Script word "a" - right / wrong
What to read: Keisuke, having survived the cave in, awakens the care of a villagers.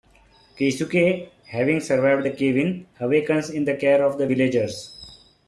wrong